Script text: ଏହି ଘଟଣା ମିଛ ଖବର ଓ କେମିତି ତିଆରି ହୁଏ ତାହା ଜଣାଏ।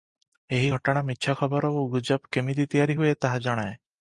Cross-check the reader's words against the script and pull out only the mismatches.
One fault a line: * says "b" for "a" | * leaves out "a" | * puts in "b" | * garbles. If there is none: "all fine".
* puts in "ଗୁଜବ"